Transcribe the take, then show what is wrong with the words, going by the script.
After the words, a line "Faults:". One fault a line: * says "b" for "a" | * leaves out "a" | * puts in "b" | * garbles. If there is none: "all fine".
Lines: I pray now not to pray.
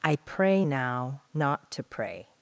I pray now not to pray.
Faults:
all fine